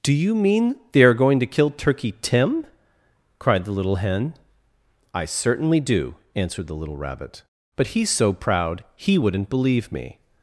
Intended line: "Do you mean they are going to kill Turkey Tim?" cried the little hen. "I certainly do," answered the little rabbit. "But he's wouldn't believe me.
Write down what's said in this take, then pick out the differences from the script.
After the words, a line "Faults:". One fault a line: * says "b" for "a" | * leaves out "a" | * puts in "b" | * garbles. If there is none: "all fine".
"Do you mean they are going to kill Turkey Tim?" cried the little hen. "I certainly do," answered the little rabbit. "But he's so proud he wouldn't believe me.
Faults:
* puts in "so proud he"